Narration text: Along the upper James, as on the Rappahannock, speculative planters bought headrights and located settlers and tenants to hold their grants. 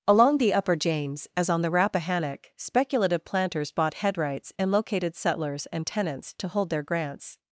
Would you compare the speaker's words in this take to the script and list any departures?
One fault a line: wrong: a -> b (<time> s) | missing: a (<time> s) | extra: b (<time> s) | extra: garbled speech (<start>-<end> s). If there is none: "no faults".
no faults